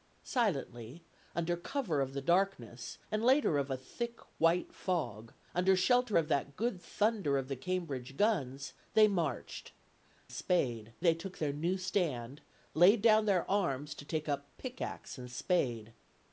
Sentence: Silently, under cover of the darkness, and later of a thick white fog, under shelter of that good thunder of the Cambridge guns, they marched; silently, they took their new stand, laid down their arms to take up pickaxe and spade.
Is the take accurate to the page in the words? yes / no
no